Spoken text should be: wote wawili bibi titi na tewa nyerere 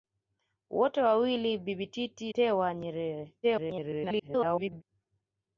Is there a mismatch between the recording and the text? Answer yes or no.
yes